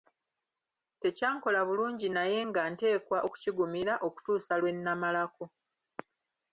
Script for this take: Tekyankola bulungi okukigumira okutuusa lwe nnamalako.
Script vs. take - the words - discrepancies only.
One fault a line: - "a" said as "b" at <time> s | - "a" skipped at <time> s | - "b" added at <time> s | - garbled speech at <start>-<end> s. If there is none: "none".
- "naye nga nteekwa" added at 2.1 s